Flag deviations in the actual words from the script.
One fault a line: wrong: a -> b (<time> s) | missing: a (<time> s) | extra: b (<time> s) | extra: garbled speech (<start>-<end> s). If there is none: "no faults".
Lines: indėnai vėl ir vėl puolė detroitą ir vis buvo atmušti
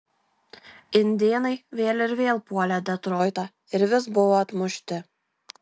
no faults